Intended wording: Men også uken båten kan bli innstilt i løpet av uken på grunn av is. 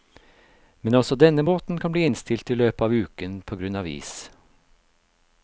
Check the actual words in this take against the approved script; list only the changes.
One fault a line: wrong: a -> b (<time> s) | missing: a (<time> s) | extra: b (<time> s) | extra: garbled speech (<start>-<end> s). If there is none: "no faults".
wrong: uken -> denne (1.2 s)